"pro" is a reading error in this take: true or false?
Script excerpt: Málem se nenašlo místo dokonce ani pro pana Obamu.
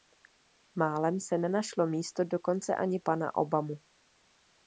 true